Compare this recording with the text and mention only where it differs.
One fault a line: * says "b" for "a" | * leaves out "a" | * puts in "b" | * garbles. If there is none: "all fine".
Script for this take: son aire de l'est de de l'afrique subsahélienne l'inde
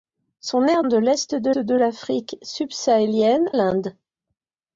all fine